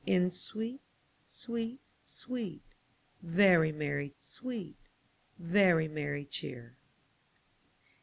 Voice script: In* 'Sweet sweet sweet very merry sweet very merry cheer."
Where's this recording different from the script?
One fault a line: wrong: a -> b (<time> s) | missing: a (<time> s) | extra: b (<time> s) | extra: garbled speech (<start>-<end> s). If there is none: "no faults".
no faults